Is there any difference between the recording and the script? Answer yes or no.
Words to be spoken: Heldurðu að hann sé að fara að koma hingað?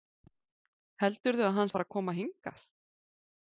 yes